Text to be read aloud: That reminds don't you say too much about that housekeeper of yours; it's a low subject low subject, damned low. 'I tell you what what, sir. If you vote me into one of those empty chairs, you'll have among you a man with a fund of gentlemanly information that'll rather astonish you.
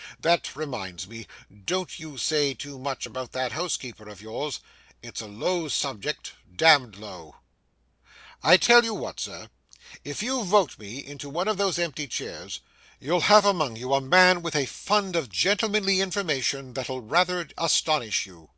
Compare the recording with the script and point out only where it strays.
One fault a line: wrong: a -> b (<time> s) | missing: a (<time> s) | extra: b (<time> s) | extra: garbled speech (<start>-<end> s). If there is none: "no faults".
extra: me (1.1 s)
missing: low subject (6.3 s)
missing: what (9.2 s)